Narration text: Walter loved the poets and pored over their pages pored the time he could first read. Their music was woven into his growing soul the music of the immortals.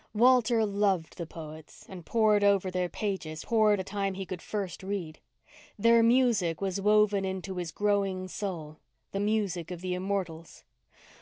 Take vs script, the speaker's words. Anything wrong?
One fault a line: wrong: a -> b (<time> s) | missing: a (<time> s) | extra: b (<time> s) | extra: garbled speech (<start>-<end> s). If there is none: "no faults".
no faults